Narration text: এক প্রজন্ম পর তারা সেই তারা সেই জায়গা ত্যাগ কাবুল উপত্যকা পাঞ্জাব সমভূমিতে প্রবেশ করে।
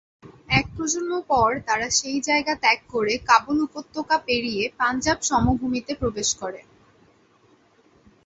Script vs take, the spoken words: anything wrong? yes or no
yes